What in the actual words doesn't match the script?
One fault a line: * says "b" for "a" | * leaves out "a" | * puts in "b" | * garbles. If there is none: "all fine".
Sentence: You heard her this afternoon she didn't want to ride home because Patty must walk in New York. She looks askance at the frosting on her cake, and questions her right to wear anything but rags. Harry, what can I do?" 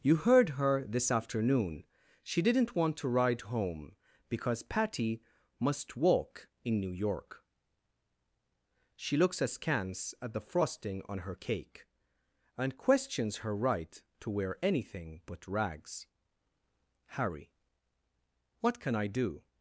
all fine